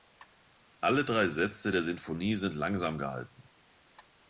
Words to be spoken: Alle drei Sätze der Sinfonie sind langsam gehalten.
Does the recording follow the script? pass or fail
pass